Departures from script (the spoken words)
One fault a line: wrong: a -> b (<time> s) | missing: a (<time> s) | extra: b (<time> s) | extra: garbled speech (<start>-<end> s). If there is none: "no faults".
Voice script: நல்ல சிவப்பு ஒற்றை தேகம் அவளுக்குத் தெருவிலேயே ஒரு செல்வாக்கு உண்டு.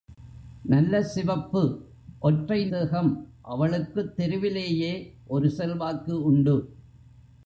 no faults